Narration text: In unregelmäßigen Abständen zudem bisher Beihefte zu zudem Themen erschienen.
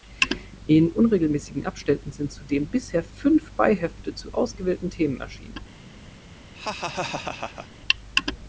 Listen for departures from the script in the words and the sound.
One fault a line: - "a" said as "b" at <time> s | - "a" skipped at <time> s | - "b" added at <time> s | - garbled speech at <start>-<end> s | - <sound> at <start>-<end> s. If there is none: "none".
- "sind" added at 2.1 s
- "fünf" added at 3.0 s
- "zudem" said as "ausgewählten" at 4.3 s
- laugh at 6.5-7.7 s